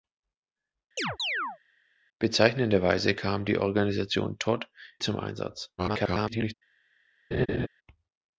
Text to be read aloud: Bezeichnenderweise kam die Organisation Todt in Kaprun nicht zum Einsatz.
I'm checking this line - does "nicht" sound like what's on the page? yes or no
no